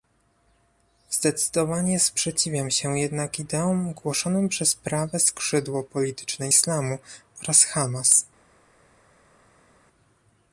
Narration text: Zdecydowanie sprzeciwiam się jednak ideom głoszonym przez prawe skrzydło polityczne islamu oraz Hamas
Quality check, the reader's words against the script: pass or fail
pass